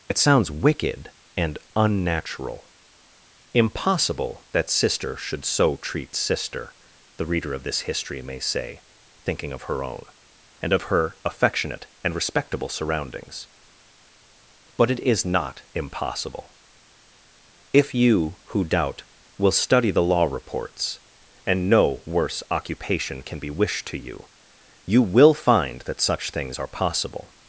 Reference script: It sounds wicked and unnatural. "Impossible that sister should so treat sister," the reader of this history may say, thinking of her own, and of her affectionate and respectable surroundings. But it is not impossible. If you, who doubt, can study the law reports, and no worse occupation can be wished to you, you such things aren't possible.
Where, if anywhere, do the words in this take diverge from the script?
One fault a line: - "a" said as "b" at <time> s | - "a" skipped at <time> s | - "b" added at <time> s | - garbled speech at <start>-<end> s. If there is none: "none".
- "can" said as "will" at 19.4 s
- "will find that" added at 25.0 s
- "aren't" said as "are" at 26.6 s